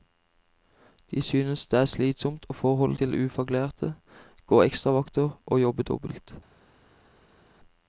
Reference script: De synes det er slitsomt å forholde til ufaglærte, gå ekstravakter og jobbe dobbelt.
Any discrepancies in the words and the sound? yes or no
no